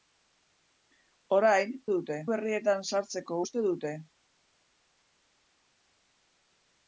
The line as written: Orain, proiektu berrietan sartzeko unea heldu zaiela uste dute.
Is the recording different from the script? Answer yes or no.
yes